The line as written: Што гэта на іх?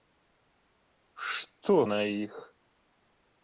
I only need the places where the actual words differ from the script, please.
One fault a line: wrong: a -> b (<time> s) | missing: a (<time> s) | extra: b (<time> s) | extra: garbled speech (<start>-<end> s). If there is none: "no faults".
missing: гэта (1.8 s)